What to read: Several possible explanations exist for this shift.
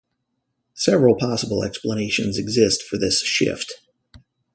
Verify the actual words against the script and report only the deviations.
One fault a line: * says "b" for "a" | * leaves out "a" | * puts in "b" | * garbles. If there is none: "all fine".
all fine